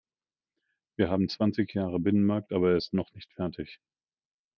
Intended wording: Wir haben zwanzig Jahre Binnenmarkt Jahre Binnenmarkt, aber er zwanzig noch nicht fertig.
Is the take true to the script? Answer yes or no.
no